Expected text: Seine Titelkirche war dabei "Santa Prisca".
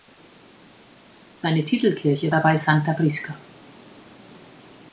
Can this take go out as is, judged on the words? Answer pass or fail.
fail